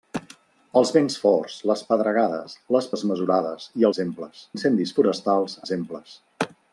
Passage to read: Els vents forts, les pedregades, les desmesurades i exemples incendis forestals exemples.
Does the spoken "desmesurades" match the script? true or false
true